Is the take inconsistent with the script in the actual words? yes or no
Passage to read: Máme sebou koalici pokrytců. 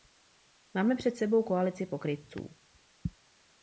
yes